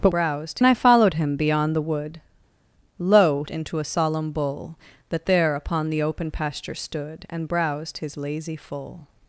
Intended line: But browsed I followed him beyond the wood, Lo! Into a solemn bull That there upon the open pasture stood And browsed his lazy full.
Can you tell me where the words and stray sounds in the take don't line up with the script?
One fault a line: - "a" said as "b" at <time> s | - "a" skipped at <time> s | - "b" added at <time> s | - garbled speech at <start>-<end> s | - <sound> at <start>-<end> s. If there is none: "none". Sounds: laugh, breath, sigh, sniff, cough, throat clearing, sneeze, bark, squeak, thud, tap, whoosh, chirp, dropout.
none